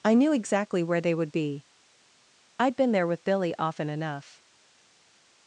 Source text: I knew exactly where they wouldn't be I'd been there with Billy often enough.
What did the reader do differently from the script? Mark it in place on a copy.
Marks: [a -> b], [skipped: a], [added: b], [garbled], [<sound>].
I knew exactly where they [wouldn't -> would] be I'd been there with Billy often enough.